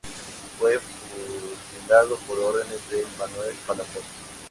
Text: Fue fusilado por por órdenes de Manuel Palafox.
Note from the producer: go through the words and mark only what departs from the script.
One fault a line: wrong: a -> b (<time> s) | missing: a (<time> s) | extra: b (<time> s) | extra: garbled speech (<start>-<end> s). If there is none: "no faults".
missing: por (2.4 s)